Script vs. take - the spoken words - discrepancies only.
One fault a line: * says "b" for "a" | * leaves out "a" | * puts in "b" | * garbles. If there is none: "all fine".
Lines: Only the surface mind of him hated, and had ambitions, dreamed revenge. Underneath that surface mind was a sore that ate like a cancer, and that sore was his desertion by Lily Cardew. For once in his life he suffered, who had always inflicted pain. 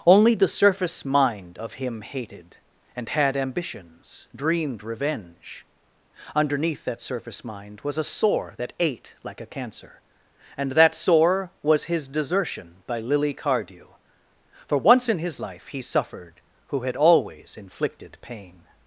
all fine